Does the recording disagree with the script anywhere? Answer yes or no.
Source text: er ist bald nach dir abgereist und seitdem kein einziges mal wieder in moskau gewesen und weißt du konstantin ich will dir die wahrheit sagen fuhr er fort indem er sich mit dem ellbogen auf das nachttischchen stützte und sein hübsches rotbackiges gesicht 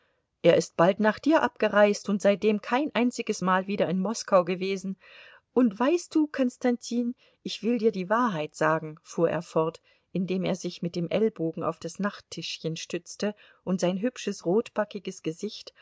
no